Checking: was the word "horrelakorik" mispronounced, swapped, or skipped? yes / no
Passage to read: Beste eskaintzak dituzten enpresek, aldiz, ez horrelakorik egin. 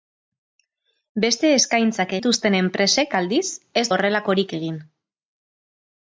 no